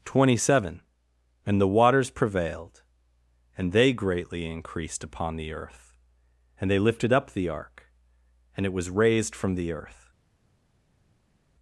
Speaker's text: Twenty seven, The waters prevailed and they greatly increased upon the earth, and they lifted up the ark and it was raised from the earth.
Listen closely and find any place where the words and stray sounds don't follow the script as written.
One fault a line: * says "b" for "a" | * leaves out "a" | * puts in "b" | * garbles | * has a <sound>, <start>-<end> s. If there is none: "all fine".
* puts in "And"